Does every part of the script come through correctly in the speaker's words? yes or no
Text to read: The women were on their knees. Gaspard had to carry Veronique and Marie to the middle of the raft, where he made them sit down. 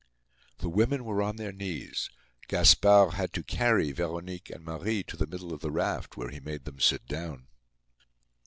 yes